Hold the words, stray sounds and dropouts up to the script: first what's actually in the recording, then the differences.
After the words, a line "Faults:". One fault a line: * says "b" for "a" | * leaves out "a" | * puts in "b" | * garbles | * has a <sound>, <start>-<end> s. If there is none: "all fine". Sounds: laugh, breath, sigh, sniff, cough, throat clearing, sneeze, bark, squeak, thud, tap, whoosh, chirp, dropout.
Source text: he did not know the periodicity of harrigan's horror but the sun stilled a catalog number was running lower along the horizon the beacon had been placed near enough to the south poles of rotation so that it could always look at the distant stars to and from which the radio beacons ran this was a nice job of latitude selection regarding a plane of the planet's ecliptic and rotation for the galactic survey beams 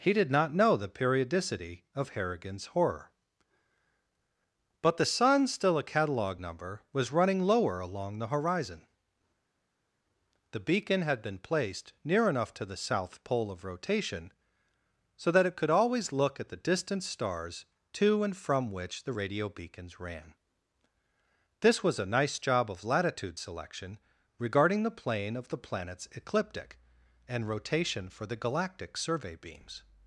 he did not know the periodicity of harrigan's horror but the sun still a catalog number was running lower along the horizon the beacon had been placed near enough to the south pole of rotation so that it could always look at the distant stars to and from which the radio beacons ran this was a nice job of latitude selection regarding the plane of the planet's ecliptic and rotation for the galactic survey beams
Faults:
* says "still" for "stilled"
* says "pole" for "poles"
* says "the" for "a"